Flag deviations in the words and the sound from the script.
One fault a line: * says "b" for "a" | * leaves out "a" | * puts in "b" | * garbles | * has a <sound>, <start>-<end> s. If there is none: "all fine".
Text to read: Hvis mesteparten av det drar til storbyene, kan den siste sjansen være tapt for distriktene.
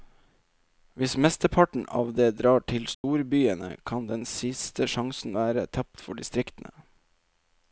* has a dropout, 2.9-3.0 s